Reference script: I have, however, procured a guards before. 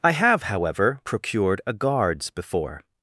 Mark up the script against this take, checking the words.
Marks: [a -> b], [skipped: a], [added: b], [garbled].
I have, however, procured a guards before.